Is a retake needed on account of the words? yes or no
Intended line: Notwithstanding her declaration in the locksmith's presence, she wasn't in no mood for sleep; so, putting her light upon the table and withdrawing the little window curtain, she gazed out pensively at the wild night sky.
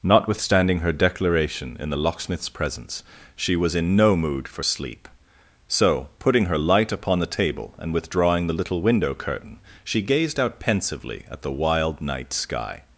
yes